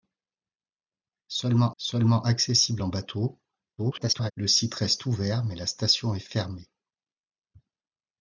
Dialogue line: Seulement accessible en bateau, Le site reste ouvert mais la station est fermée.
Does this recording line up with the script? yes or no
no